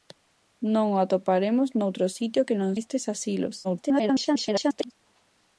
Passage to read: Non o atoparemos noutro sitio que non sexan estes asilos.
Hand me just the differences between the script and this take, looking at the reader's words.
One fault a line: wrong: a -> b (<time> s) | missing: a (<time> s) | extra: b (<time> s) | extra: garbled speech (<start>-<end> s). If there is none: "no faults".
missing: sexan (2.7 s)
extra: garbled speech (3.6-4.9 s)